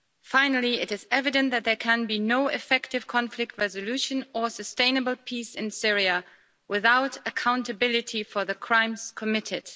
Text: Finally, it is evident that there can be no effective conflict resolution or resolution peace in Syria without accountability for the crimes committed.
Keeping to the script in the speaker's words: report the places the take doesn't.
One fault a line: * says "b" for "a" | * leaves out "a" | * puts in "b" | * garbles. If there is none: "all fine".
* says "sustainable" for "resolution"